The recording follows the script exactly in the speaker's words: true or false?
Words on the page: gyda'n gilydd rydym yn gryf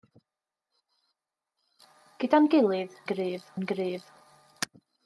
false